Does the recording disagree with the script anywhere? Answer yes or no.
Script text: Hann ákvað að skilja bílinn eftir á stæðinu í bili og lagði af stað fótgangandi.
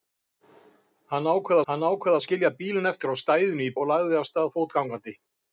yes